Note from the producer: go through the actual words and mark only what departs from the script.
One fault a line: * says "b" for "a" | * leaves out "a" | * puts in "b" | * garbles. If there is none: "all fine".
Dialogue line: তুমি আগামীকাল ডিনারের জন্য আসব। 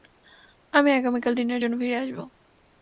* says "আমি" for "তুমি"
* puts in "ফিরে"